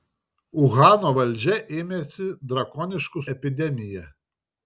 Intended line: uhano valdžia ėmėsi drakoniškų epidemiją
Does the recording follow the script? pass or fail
pass